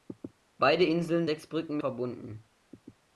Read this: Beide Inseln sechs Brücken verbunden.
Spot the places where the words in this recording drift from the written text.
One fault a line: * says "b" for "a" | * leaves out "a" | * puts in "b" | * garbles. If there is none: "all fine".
all fine